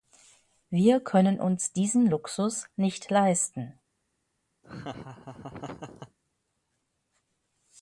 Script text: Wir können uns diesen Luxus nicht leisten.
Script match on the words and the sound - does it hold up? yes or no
no